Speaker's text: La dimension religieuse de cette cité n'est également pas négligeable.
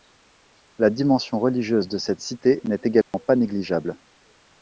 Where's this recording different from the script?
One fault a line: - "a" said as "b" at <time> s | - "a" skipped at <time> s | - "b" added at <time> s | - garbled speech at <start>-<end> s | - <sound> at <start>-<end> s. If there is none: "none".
- dropout at 3.0-3.1 s